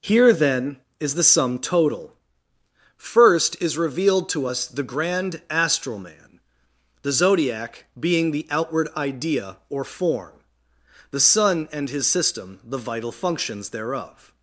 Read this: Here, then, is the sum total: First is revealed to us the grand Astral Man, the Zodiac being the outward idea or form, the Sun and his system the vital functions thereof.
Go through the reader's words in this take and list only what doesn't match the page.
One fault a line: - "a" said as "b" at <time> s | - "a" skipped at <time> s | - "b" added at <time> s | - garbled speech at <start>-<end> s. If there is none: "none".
none